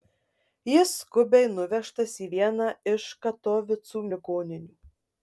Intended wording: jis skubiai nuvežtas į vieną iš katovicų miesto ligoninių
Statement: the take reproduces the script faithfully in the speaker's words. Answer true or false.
false